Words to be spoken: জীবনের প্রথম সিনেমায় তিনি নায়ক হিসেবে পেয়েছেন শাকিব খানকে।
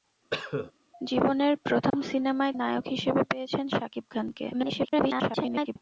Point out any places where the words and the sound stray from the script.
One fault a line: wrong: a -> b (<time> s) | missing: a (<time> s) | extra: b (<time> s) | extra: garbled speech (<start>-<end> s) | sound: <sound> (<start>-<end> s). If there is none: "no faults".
sound: cough (0.3-0.7 s)
sound: dropout (1.9-1.9 s)
missing: তিনি (2.5 s)
extra: garbled speech (4.5-5.8 s)